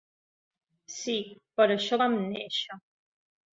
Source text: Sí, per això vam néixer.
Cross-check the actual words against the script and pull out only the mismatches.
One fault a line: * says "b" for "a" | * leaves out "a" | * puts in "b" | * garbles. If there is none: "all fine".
all fine